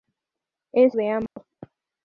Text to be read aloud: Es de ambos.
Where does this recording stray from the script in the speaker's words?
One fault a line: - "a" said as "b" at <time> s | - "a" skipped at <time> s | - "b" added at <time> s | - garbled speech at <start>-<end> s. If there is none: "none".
none